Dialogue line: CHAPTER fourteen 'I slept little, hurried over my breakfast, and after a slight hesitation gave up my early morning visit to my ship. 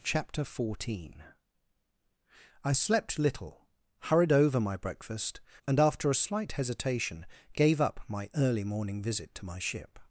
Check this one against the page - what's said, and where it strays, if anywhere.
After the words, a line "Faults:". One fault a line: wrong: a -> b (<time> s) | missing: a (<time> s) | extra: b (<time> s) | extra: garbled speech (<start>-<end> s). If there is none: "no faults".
CHAPTER fourteen 'I slept little, hurried over my breakfast, and after a slight hesitation gave up my early morning visit to my ship.
Faults:
no faults